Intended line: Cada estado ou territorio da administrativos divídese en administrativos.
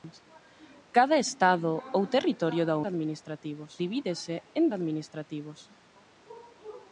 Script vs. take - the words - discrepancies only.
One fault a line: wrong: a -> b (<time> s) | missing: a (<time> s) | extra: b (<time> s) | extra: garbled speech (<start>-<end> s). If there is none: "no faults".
no faults